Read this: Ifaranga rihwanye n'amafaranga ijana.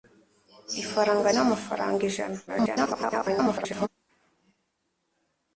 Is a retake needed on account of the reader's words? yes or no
yes